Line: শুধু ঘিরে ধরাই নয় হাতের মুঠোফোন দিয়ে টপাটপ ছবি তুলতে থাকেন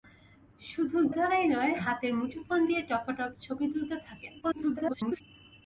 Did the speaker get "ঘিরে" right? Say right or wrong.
wrong